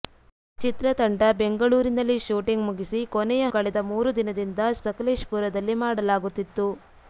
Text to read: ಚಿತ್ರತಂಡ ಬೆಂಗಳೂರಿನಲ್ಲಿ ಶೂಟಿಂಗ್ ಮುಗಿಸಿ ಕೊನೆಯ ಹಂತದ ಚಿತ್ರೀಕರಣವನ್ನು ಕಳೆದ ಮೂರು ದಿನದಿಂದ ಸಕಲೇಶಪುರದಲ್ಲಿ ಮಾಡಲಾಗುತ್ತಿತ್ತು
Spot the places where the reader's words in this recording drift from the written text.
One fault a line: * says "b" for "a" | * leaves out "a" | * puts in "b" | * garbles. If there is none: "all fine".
* leaves out "ಹಂತದ ಚಿತ್ರೀಕರಣವನ್ನು"